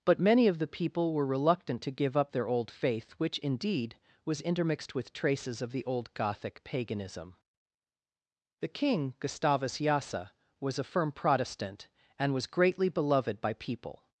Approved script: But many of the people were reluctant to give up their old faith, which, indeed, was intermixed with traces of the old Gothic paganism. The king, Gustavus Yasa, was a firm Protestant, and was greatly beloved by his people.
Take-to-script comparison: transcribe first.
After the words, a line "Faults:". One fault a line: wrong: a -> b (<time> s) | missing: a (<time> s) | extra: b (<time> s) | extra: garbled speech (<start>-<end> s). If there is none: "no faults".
But many of the people were reluctant to give up their old faith, which, indeed, was intermixed with traces of the old Gothic paganism. The king, Gustavus Yasa, was a firm Protestant, and was greatly beloved by people.
Faults:
missing: his (13.5 s)